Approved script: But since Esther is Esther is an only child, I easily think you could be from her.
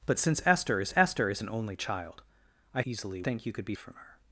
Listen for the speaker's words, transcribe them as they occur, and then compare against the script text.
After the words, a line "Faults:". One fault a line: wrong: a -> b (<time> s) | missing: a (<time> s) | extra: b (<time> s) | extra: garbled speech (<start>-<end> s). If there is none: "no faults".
But since Esther is Esther is an only child, I easily think you could be from her.
Faults:
no faults